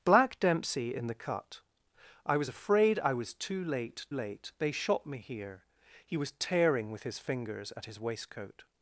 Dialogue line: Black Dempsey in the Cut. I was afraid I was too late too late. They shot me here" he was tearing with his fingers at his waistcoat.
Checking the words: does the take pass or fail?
fail